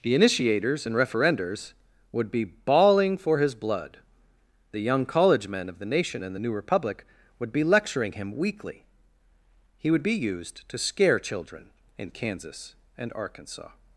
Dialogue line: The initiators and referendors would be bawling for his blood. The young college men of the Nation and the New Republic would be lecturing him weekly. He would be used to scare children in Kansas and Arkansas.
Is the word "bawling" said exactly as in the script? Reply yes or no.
yes